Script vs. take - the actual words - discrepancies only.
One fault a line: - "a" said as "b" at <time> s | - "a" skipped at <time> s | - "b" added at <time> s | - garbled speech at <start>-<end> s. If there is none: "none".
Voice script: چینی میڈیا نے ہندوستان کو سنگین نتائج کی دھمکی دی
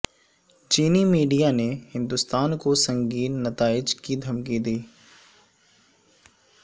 none